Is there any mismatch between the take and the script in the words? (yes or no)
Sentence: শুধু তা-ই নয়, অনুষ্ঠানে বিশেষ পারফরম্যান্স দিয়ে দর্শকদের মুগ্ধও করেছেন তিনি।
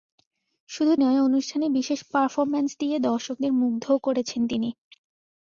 yes